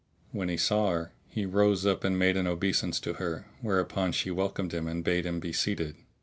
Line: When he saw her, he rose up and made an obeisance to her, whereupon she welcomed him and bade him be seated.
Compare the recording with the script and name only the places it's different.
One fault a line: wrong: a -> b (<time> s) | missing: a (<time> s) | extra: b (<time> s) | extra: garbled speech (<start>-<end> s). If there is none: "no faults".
no faults